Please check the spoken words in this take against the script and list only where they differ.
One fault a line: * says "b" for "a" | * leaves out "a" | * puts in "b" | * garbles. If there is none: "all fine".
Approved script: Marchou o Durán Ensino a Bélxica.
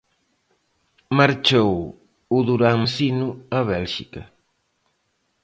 all fine